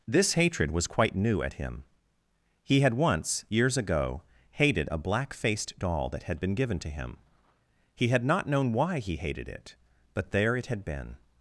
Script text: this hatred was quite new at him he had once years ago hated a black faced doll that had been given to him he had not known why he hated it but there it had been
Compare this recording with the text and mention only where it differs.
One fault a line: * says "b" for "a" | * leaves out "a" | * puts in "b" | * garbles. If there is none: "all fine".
all fine